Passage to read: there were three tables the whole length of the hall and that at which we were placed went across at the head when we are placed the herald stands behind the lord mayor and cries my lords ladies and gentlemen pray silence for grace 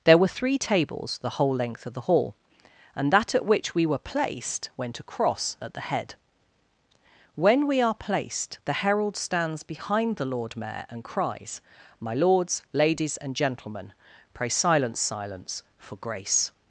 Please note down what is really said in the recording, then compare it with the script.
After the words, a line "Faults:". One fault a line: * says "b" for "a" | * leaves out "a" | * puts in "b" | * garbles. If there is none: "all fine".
there were three tables the whole length of the hall and that at which we were placed went across at the head when we are placed the herald stands behind the lord mayor and cries my lords ladies and gentlemen pray silence silence for grace
Faults:
* puts in "silence"